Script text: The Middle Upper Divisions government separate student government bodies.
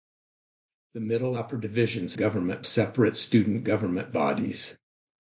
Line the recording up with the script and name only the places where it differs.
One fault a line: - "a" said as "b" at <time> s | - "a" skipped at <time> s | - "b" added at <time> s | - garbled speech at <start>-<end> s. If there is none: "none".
none